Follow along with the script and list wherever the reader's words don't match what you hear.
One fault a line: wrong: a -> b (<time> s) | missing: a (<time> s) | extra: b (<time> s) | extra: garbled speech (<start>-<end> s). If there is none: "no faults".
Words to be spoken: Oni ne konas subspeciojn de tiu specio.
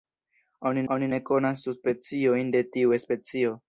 extra: oni (0.9 s)